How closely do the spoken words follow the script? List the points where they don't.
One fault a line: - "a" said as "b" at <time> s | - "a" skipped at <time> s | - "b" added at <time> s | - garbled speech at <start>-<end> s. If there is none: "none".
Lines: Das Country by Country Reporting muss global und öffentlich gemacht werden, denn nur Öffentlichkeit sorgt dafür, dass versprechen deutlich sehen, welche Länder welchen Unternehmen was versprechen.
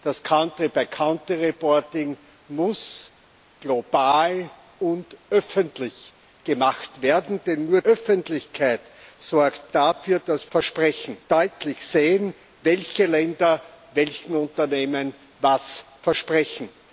none